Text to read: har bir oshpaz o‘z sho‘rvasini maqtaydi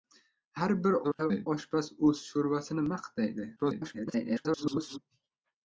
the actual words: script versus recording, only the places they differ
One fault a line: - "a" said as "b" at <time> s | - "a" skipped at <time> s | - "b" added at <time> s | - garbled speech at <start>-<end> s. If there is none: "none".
- garbled speech at 1.0-1.5 s
- garbled speech at 3.6-5.0 s